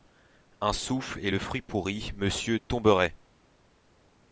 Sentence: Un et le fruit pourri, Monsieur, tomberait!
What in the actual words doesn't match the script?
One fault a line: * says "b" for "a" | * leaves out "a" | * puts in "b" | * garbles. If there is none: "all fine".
* puts in "souffle"